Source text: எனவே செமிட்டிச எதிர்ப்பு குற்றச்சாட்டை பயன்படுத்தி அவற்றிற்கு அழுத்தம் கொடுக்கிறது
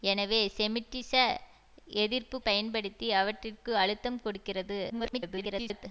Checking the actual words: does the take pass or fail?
fail